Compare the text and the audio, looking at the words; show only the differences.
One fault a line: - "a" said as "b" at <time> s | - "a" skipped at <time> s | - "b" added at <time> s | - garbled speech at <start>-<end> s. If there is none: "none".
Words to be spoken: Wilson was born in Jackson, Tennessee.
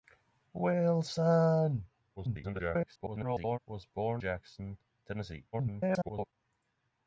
- garbled speech at 2.2-3.6 s
- "in" skipped at 4.2 s
- garbled speech at 5.5-6.3 s